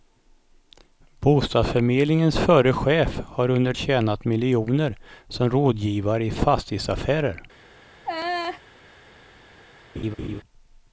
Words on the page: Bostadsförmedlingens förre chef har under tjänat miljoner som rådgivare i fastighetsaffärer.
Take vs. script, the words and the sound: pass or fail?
fail